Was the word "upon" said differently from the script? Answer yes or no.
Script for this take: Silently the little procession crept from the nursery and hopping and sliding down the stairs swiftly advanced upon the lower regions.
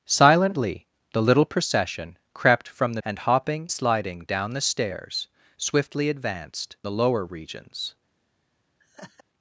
yes